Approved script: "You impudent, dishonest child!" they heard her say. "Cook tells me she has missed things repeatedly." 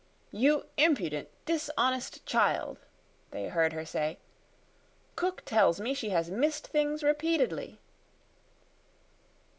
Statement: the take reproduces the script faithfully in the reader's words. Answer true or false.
true